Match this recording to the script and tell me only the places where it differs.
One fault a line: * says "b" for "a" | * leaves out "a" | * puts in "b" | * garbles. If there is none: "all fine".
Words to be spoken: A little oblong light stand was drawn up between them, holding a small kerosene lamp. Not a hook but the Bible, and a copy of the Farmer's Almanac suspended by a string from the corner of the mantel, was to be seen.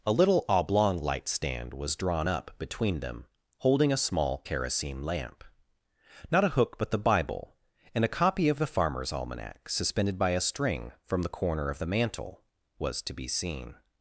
all fine